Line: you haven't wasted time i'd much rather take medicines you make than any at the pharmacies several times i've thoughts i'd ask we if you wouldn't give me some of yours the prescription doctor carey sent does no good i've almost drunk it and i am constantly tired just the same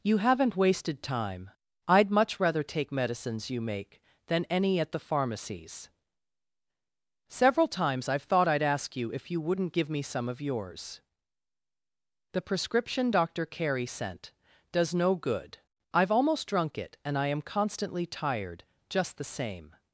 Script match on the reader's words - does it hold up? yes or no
no